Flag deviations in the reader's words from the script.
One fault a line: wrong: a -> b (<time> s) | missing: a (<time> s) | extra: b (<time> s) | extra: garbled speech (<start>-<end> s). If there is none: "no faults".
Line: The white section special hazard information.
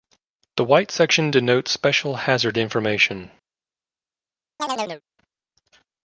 extra: denotes (1.3 s)